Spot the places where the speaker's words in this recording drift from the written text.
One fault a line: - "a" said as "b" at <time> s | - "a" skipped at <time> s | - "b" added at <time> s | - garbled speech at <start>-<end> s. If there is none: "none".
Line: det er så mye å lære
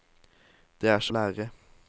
- "mye" skipped at 1.1 s